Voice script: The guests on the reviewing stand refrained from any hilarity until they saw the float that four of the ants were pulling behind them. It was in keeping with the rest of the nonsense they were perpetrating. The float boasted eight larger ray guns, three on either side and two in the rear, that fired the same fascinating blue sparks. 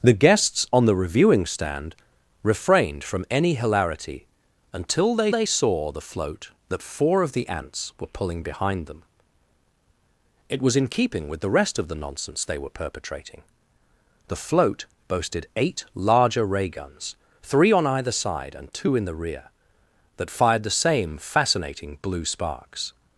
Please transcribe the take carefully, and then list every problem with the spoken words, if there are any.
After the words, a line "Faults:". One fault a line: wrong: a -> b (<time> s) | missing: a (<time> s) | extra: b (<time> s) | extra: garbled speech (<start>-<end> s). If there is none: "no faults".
The guests on the reviewing stand refrained from any hilarity until they they saw the float that four of the ants were pulling behind them. It was in keeping with the rest of the nonsense they were perpetrating. The float boasted eight larger ray guns, three on either side and two in the rear, that fired the same fascinating blue sparks.
Faults:
extra: they (5.3 s)